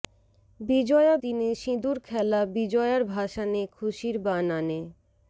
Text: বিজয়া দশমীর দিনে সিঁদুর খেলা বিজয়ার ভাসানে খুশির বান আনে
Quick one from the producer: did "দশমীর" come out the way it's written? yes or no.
no